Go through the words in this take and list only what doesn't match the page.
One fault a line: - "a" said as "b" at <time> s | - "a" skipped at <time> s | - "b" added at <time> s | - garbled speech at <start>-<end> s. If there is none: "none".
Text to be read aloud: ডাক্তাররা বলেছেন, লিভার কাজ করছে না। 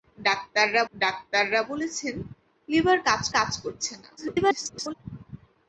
- "ডাক্তাররা" added at 0.9 s
- "কাজ" added at 3.4 s
- garbled speech at 4.2-4.9 s